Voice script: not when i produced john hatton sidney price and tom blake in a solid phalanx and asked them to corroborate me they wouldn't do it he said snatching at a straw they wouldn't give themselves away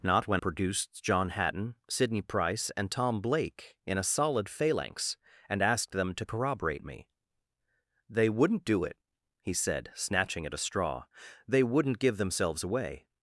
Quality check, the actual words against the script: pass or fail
fail